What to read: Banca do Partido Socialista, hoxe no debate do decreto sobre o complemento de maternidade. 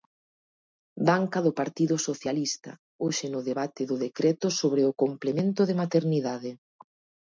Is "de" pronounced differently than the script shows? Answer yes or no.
no